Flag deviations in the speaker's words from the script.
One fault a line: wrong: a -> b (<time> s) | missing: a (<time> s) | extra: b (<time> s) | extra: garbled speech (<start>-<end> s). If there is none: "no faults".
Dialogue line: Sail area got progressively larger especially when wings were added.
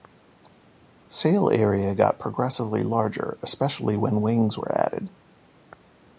no faults